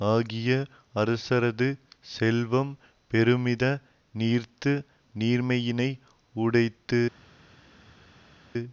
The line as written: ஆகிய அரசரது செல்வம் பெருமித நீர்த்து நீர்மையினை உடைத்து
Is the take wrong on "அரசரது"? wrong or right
right